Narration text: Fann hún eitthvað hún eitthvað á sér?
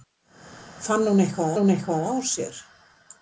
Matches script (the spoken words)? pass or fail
pass